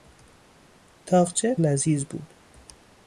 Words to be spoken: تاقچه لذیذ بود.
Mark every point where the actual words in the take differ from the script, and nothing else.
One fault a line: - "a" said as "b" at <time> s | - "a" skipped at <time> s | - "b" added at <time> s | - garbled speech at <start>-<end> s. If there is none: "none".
none